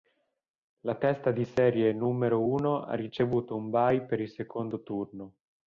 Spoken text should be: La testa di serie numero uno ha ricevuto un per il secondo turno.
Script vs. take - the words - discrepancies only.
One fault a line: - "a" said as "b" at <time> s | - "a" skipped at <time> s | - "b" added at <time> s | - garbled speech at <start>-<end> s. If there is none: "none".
- "bye" added at 3.7 s